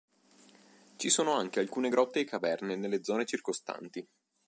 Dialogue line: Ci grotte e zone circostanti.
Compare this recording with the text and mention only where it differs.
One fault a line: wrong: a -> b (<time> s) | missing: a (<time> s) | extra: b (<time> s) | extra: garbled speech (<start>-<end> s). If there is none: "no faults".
extra: sono anche alcune (1.1 s)
extra: caverne nelle (2.2 s)